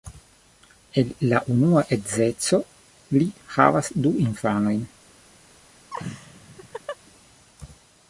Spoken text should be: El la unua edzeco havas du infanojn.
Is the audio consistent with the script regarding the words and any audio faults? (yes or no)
no